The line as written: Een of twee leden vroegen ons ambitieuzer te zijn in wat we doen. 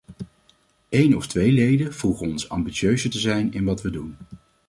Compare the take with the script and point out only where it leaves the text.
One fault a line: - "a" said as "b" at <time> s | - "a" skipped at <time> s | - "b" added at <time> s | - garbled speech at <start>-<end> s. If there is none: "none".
none